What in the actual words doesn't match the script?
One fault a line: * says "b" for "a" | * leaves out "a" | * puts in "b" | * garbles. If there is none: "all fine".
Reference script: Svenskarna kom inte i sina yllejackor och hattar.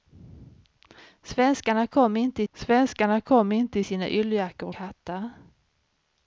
* puts in "svenskarna kom inte"
* leaves out "och"